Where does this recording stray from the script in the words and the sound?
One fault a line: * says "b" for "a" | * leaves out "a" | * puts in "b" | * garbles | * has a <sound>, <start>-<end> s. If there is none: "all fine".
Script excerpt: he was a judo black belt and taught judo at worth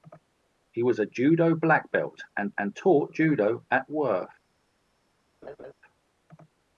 * puts in "and"
* has a laugh, 5.4-5.7 s